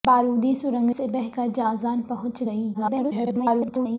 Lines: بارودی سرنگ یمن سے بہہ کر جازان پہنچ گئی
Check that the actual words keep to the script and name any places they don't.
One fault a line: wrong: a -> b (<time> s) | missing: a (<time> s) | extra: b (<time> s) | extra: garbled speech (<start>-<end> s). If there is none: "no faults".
missing: یمن (0.9 s)
extra: garbled speech (2.7-4.0 s)